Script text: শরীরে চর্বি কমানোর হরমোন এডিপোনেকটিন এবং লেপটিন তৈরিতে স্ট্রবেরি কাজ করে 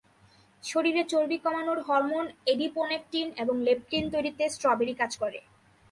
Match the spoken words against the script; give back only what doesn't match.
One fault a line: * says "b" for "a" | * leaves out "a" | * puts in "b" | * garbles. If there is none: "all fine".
all fine